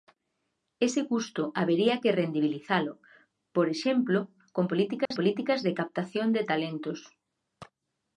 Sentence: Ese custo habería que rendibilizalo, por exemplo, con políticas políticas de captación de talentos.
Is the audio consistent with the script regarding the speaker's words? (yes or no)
yes